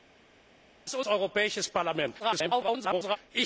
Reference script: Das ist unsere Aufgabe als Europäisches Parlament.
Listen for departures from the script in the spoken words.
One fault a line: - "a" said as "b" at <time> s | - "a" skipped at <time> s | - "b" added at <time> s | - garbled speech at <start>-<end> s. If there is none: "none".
- "unsere Aufgabe als" skipped at 1.0 s
- garbled speech at 2.2-3.2 s